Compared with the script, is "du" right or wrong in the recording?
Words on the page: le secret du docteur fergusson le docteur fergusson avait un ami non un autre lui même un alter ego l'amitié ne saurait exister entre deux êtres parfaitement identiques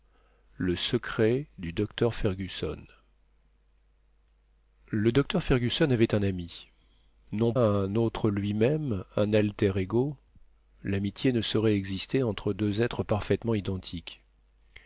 right